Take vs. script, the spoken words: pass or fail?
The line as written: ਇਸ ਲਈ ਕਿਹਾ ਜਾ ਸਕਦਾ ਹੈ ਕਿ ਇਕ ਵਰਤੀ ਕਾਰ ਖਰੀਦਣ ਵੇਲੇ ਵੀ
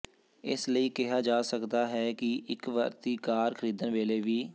pass